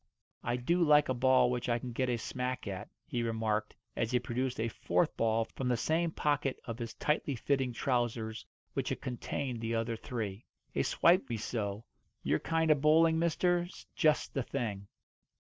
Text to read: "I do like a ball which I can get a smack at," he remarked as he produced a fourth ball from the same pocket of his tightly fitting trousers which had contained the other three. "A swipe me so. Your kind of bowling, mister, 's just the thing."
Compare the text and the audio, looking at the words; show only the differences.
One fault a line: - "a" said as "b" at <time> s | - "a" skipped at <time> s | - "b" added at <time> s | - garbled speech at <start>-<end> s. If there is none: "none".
none